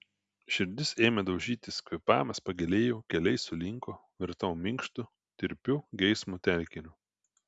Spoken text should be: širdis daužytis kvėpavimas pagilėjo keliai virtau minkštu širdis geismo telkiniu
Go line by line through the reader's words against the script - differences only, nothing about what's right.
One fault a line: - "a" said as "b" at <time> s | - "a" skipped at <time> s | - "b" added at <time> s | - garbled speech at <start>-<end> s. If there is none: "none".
- "ėmė" added at 1.1 s
- "sulinko" added at 3.4 s
- "širdis" said as "tirpiu" at 5.4 s